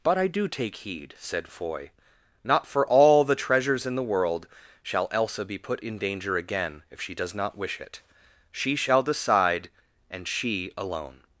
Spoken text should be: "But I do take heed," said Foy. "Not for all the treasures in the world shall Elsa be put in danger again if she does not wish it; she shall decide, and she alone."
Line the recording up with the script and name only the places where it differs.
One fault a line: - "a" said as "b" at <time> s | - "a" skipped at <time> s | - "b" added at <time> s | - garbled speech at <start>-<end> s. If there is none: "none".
none